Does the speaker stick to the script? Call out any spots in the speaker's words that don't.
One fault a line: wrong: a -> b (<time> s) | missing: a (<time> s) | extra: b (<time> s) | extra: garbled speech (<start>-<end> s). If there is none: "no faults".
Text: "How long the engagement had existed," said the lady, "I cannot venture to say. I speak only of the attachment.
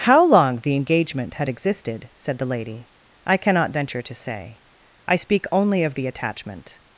no faults